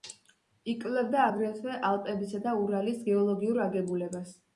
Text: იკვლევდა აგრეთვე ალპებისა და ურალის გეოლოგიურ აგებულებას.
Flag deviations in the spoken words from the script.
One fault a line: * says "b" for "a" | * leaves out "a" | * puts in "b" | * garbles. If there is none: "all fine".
all fine